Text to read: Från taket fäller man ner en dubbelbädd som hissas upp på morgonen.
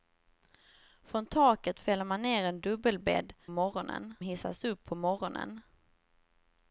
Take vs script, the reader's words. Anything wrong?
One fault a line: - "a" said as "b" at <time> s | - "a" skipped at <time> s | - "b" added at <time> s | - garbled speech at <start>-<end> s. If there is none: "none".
- "som" said as "morgonen" at 3.5 s